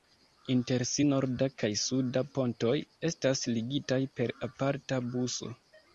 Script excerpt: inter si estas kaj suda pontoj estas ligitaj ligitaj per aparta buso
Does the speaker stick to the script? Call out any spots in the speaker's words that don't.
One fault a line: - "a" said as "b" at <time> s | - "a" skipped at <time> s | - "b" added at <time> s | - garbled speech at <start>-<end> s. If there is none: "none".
- "estas" said as "norda" at 1.1 s
- "ligitaj" skipped at 4.0 s